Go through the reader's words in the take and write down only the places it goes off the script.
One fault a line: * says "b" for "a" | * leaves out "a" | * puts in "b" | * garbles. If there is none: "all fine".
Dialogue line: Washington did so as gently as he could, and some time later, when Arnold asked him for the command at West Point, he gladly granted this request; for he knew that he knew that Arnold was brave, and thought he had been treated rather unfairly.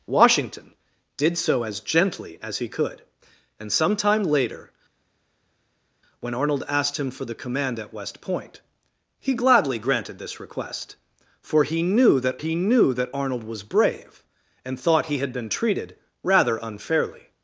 all fine